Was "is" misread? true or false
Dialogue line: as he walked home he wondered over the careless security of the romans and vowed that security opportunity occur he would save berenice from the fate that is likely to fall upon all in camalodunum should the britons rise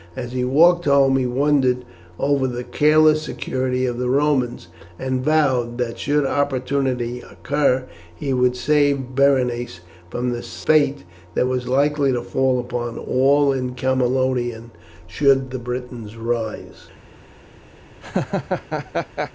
true